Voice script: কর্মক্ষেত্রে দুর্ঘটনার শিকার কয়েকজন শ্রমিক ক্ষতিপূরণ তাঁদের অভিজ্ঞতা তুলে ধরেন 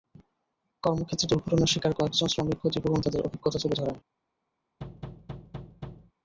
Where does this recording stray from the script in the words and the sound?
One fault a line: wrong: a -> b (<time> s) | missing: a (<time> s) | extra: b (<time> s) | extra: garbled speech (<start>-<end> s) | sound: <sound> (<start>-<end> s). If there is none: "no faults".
sound: thud (4.8-6.1 s)